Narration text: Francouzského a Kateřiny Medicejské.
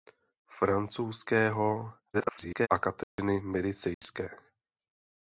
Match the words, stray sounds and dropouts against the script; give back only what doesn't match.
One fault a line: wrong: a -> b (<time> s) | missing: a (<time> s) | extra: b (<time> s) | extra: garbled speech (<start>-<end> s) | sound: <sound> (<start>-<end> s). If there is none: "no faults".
extra: garbled speech (2.1-2.7 s)
sound: dropout (3.0-3.2 s)
sound: dropout (3.9-4.0 s)